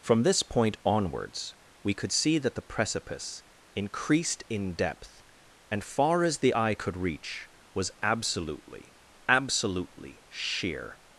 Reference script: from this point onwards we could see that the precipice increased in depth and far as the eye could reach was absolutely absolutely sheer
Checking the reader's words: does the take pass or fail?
pass